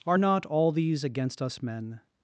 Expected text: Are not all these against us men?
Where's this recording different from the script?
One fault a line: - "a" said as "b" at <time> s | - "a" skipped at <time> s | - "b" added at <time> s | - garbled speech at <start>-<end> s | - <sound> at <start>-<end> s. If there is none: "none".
none